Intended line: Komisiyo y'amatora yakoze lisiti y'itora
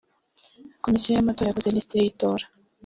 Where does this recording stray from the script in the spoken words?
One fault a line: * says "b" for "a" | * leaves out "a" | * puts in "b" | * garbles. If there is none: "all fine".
all fine